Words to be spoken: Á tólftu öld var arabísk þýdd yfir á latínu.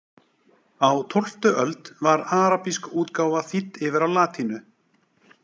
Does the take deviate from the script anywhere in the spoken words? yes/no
yes